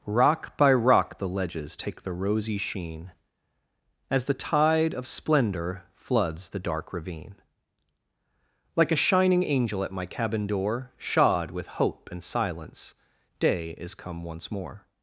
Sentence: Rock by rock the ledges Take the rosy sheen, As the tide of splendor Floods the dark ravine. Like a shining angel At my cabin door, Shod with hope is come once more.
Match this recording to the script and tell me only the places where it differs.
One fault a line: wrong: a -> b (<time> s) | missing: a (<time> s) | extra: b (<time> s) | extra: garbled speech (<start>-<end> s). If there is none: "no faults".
extra: and silence Day (12.1 s)